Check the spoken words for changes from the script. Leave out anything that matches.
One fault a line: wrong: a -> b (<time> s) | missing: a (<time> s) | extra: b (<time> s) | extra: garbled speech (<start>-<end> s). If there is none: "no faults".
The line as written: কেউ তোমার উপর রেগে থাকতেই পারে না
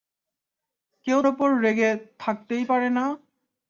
missing: তোমার (1.2 s)